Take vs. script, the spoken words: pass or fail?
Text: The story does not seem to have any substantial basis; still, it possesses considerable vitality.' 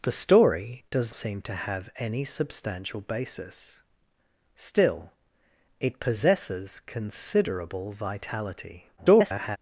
fail